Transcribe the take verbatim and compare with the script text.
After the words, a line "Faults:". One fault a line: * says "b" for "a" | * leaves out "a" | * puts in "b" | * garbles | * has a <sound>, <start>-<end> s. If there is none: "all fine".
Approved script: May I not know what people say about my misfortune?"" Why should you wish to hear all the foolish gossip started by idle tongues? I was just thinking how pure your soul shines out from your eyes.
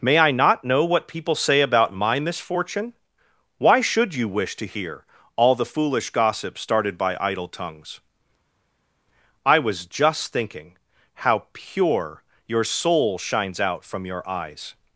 May I not know what people say about my misfortune?"" Why should you wish to hear all the foolish gossip started by idle tongues? I was just thinking how pure your soul shines out from your eyes.
Faults:
all fine